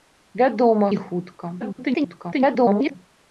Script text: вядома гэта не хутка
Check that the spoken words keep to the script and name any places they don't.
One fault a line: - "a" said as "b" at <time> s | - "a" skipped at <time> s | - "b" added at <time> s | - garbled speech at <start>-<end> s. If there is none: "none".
- "гэта" skipped at 0.9 s
- garbled speech at 1.6-3.0 s